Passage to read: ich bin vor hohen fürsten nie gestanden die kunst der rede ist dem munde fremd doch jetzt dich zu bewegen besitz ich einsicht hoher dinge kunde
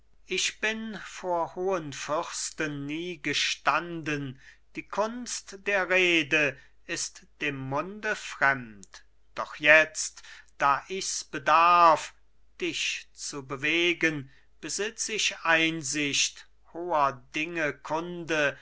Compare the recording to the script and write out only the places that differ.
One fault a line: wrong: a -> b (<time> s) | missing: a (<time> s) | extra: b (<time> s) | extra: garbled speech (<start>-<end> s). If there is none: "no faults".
extra: da ichs bedarf (10.6 s)